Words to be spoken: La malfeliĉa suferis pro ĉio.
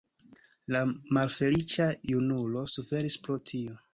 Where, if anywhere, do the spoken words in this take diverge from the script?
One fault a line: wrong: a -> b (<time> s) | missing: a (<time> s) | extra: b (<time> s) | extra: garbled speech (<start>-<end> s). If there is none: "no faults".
extra: junulo (2.1 s)
wrong: ĉio -> tio (3.5 s)